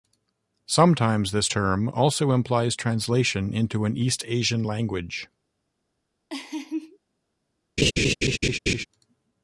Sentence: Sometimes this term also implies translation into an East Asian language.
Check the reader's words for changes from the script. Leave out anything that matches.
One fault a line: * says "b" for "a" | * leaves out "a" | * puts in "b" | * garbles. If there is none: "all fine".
all fine